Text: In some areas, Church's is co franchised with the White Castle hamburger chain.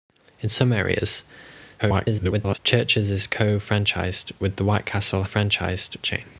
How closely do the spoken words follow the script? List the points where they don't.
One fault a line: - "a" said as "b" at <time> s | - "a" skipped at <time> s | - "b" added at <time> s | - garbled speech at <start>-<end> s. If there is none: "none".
- garbled speech at 1.8-2.6 s
- "hamburger" said as "franchised" at 5.2 s